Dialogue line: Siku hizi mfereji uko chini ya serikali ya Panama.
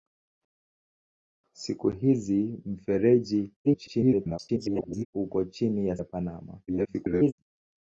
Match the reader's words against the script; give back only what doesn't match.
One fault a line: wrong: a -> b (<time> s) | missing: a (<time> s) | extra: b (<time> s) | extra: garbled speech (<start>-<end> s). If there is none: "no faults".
extra: garbled speech (3.6-5.1 s)
missing: serikali (6.0 s)
extra: garbled speech (6.7-7.3 s)